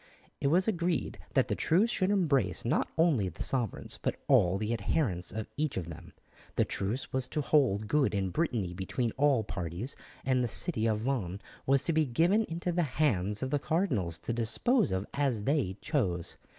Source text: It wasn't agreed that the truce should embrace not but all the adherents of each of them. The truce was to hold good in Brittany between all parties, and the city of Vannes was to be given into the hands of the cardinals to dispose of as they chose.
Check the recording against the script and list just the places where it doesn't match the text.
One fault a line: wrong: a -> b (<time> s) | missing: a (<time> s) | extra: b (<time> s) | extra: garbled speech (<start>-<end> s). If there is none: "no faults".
wrong: wasn't -> was (0.5 s)
extra: only the sovereigns (3.0 s)